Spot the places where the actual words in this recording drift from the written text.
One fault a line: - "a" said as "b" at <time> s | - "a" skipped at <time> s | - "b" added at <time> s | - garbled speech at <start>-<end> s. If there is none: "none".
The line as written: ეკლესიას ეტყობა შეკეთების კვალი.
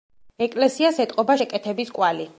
none